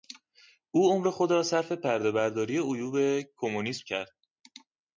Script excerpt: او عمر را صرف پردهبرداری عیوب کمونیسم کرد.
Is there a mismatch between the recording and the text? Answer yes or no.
yes